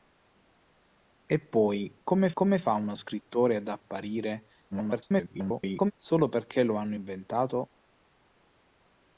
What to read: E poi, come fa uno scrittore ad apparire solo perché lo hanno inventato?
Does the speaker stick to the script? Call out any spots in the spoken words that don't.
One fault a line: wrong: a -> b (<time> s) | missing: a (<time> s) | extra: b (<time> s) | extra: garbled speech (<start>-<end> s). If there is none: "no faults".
extra: come (2.3 s)
extra: garbled speech (4.7-5.9 s)